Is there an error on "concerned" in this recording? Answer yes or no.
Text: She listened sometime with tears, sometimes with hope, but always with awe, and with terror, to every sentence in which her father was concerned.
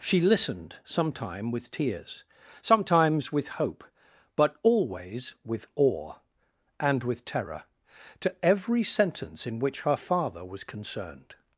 no